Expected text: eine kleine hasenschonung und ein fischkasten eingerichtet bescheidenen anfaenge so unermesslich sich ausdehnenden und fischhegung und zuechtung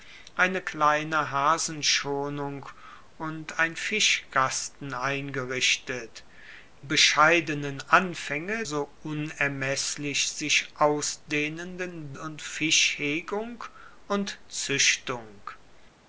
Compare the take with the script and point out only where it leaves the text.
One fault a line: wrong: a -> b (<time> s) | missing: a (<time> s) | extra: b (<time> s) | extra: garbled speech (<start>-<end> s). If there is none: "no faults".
no faults